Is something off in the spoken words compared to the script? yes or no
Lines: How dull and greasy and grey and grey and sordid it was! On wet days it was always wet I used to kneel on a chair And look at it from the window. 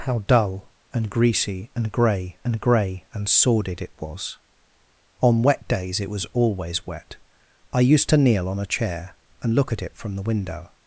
no